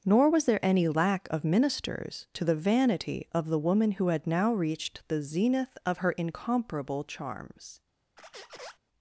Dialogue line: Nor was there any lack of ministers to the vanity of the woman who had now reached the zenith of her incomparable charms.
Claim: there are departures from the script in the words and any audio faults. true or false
true